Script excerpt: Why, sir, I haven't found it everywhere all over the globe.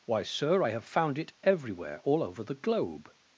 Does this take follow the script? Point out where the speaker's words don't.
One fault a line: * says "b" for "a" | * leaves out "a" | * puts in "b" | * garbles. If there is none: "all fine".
* says "have" for "haven't"